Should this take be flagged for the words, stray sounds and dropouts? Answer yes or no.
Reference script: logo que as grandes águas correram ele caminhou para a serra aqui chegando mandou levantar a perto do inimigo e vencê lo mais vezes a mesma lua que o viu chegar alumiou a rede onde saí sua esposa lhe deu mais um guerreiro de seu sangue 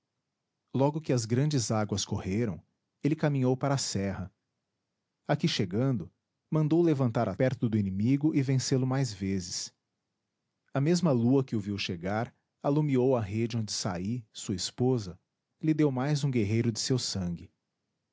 no